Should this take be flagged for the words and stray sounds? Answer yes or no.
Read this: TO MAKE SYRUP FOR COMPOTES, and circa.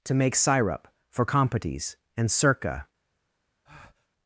yes